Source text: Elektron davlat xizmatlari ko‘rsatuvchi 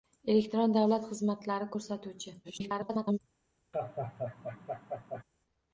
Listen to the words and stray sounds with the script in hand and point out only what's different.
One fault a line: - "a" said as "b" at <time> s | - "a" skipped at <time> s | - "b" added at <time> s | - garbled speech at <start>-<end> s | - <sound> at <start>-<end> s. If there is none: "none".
- garbled speech at 2.4-3.2 s
- laugh at 3.7-5.2 s